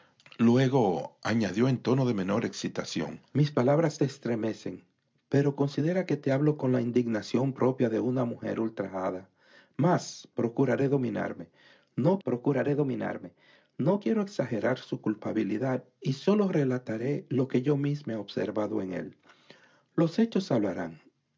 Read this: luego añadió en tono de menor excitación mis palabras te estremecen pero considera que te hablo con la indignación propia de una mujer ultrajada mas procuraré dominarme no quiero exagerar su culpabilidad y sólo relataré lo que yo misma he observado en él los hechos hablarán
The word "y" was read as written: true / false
true